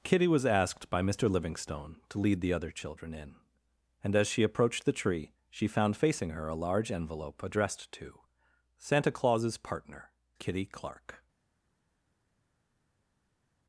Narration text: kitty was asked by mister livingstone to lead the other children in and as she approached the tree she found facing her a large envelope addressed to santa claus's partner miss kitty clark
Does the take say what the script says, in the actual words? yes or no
no